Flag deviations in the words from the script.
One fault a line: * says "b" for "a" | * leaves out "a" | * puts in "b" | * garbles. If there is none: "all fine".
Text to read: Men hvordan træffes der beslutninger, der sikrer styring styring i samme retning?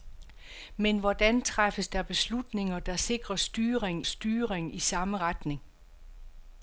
all fine